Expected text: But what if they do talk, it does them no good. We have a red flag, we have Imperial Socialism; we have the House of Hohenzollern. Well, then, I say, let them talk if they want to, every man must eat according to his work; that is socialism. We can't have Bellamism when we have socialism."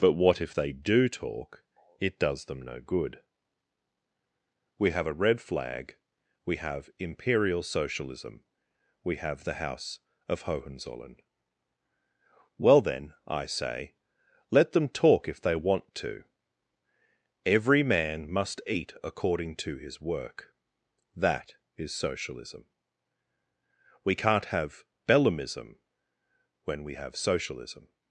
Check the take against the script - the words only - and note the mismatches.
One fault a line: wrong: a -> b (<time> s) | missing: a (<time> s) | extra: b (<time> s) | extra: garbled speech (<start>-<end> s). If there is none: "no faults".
no faults